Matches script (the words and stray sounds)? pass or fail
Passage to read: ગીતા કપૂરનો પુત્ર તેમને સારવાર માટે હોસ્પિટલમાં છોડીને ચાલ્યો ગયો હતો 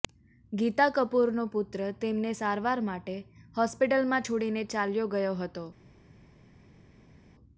pass